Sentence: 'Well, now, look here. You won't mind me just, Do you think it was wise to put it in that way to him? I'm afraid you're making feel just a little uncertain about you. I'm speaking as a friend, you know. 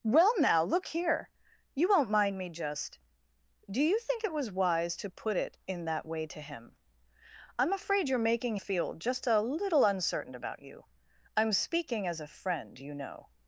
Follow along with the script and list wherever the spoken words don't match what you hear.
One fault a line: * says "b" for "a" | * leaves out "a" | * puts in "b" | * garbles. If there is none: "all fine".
all fine